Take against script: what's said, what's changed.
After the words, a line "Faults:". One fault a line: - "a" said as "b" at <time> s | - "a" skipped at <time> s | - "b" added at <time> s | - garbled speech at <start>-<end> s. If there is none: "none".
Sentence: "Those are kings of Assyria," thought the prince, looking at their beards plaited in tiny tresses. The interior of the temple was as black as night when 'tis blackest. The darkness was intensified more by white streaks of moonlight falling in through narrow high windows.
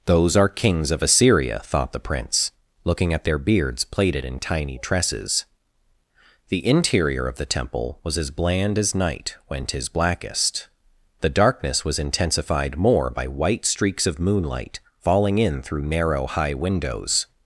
"Those are kings of Assyria," thought the prince, looking at their beards plaited in tiny tresses. The interior of the temple was as bland as night when 'tis blackest. The darkness was intensified more by white streaks of moonlight falling in through narrow high windows.
Faults:
- "black" said as "bland" at 8.3 s